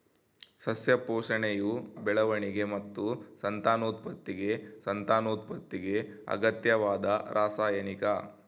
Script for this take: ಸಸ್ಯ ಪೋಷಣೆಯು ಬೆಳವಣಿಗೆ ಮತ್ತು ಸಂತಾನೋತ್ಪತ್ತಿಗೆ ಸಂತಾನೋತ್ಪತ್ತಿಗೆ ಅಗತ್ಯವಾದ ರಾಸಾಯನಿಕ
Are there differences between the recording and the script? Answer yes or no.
no